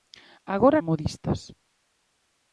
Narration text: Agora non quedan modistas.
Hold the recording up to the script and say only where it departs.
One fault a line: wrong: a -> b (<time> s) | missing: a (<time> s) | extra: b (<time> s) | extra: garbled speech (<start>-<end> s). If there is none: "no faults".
missing: non quedan (0.8 s)